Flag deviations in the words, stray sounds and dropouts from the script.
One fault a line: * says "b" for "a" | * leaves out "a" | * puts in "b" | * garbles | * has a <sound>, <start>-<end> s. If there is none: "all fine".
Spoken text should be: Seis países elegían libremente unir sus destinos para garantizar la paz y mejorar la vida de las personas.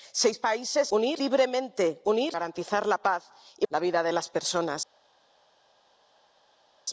* says "unir" for "elegían"
* leaves out "sus destinos para"
* leaves out "mejorar"